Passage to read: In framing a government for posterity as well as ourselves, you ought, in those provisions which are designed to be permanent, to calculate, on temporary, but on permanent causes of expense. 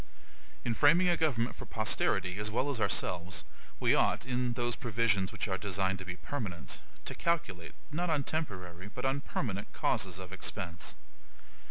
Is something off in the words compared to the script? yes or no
yes